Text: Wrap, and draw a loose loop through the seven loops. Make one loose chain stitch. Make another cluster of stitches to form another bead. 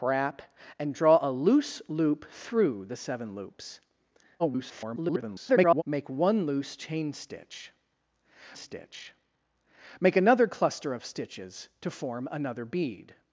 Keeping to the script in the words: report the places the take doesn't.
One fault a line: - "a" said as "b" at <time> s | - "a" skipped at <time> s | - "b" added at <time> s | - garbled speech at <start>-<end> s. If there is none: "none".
- garbled speech at 4.4-5.8 s
- "stitch" added at 8.5 s